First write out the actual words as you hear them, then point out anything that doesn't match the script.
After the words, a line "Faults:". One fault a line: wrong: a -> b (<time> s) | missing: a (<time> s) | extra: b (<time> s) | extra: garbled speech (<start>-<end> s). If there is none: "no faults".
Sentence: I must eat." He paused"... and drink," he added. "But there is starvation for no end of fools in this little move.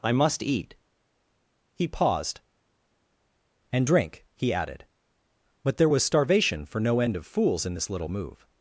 I must eat." He paused"... and drink," he added. "But there was starvation for no end of fools in this little move.
Faults:
wrong: is -> was (5.9 s)